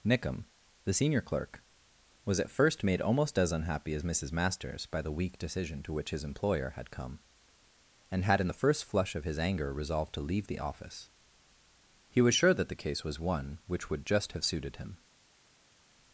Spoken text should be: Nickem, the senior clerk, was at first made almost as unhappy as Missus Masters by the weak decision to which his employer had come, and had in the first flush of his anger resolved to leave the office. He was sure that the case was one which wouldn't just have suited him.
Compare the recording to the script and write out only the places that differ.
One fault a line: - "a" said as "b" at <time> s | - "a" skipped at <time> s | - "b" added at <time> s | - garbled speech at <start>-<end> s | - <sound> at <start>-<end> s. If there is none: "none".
- "wouldn't" said as "would" at 13.9 s